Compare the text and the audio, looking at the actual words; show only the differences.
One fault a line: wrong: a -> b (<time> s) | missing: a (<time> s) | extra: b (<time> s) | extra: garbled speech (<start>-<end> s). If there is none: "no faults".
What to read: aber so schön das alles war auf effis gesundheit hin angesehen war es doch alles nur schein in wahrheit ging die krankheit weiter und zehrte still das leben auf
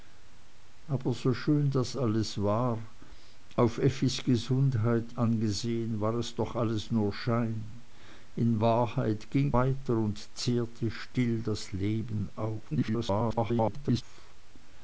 missing: hin (5.1 s)
missing: die krankheit (9.5 s)
extra: garbled speech (12.7-14.0 s)